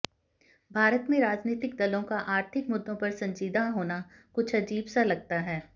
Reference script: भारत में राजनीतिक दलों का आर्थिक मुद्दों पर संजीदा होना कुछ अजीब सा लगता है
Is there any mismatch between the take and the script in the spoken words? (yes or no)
no